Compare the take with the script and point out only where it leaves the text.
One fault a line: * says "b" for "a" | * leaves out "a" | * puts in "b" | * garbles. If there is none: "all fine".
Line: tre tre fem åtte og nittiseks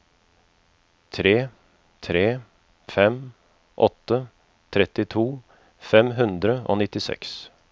* puts in "trettito fem hundre"